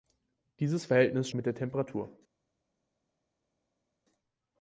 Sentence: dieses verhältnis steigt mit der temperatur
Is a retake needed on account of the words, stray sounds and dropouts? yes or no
yes